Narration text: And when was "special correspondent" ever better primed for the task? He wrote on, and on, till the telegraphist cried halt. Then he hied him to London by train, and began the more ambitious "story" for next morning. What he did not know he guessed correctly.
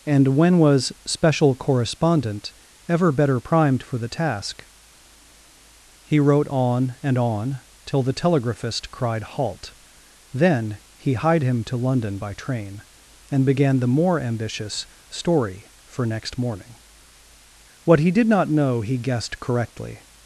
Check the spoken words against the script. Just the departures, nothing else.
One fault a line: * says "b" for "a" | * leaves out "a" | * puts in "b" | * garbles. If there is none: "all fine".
all fine